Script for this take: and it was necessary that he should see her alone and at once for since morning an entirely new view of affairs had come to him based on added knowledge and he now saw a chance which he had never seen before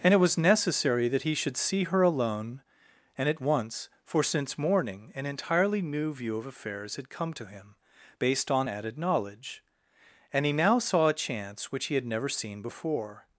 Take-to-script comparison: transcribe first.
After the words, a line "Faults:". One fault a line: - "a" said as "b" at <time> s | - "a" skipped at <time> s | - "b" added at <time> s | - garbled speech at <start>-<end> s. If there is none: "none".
and it was necessary that he should see her alone and at once for since morning an entirely new view of affairs had come to him based on added knowledge and he now saw a chance which he had never seen before
Faults:
none